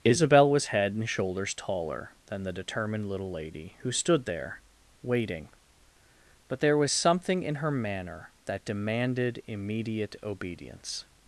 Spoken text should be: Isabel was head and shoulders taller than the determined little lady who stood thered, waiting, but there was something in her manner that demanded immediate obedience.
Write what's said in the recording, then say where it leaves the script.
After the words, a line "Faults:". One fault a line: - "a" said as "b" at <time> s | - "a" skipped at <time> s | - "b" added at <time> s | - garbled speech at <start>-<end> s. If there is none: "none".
Isabel was head and shoulders taller than the determined little lady who stood there, waiting, but there was something in her manner that demanded immediate obedience.
Faults:
- "thered" said as "there" at 4.2 s